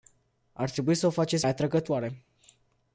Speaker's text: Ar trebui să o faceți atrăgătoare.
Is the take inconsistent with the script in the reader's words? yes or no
no